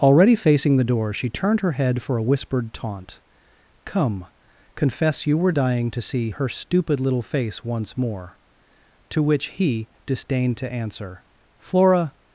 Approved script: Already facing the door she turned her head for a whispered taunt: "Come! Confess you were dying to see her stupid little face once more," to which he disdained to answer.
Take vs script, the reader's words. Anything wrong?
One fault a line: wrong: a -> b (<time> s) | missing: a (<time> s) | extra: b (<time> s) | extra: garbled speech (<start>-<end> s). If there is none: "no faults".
extra: Flora (11.6 s)